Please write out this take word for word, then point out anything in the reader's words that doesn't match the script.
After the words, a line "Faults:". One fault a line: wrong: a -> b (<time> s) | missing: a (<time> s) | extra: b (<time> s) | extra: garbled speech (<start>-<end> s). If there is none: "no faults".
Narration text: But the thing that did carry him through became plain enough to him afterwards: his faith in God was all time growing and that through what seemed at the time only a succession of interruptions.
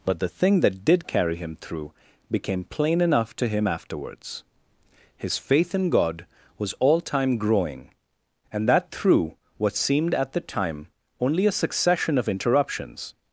But the thing that did carry him through became plain enough to him afterwards: his faith in God was all time growing and that through what seemed at the time only a succession of interruptions.
Faults:
no faults